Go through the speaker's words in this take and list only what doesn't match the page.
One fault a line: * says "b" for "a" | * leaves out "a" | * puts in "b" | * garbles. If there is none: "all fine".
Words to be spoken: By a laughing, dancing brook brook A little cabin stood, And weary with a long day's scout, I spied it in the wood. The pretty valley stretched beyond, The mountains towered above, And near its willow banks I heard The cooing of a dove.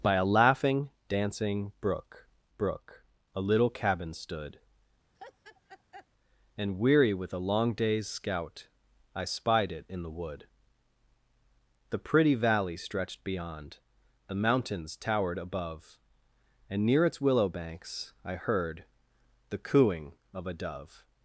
all fine